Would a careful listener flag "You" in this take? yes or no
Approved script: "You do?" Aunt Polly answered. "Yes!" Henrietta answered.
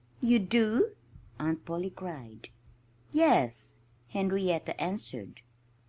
no